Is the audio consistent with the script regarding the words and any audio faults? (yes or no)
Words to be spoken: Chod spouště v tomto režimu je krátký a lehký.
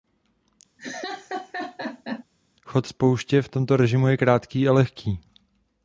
no